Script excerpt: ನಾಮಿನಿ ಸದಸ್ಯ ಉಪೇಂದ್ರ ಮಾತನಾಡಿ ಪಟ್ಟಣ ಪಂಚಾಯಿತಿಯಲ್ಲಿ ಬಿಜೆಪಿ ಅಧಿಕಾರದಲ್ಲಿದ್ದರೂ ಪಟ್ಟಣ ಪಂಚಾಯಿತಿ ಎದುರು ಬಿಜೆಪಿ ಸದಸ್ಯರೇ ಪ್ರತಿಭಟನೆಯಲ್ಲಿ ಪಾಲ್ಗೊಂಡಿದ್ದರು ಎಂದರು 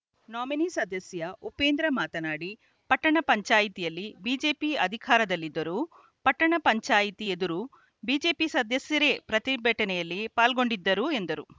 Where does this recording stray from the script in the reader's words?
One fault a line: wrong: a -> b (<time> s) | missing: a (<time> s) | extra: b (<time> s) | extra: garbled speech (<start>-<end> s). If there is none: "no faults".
no faults